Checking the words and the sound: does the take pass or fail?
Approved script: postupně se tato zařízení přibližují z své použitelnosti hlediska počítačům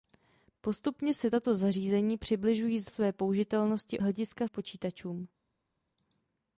pass